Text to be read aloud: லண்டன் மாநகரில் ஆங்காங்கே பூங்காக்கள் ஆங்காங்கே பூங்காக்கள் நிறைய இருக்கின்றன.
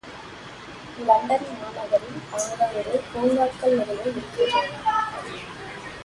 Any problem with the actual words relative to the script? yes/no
yes